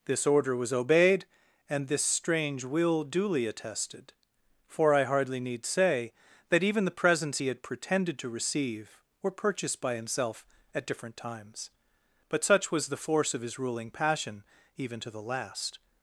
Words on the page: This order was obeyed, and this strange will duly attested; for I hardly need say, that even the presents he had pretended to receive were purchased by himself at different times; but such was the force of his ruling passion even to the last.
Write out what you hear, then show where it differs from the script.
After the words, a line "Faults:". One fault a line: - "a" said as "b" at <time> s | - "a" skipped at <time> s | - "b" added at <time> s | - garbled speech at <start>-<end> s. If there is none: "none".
This order was obeyed, and this strange will duly attested; for I hardly need say, that even the presents he had pretended to receive were purchased by himself at different times; but such was the force of his ruling passion even to the last.
Faults:
none